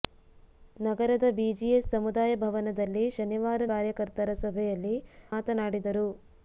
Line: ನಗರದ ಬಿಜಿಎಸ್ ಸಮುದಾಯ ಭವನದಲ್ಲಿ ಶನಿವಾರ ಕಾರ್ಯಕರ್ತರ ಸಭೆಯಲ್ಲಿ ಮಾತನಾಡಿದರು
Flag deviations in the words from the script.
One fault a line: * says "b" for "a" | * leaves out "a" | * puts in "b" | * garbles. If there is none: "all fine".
all fine